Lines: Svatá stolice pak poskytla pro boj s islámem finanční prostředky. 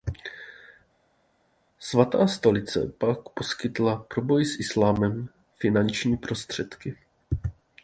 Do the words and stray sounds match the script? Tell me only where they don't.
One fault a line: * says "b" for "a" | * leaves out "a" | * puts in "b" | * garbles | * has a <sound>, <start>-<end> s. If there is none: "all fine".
all fine